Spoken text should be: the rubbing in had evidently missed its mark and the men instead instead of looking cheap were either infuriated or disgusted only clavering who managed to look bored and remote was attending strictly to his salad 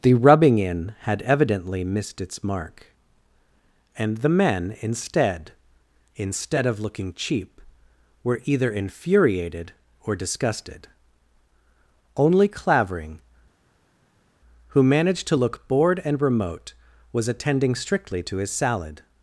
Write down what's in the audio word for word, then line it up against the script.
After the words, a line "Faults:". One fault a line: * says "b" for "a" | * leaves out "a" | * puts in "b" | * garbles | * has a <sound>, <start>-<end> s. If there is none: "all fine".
the rubbing in had evidently missed its mark and the men instead instead of looking cheap were either infuriated or disgusted only clavering who managed to look bored and remote was attending strictly to his salad
Faults:
all fine